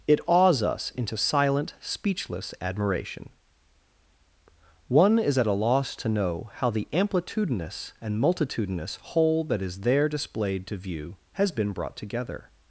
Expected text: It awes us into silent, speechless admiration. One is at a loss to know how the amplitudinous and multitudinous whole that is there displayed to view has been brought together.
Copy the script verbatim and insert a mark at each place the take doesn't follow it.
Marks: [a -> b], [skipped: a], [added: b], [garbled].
It awes us into silent, speechless admiration. One is at a loss to know how the amplitudinous and multitudinous whole that is there displayed to view has been brought together.